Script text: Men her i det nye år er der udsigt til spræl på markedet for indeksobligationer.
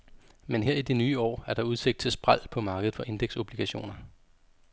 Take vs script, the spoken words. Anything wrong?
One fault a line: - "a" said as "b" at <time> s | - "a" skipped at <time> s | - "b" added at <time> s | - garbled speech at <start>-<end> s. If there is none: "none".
none